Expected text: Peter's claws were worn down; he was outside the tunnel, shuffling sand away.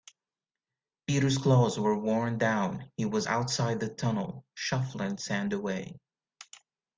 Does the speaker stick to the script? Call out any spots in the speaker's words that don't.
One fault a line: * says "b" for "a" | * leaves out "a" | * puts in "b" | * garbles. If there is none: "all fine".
all fine